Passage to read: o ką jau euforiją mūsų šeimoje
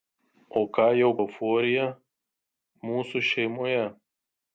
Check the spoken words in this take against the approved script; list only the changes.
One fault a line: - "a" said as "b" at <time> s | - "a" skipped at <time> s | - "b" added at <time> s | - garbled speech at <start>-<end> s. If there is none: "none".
none